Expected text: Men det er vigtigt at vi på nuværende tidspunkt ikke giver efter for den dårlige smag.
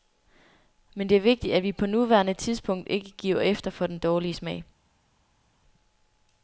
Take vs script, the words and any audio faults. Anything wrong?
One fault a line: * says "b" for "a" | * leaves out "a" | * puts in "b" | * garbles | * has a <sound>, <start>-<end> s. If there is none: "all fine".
all fine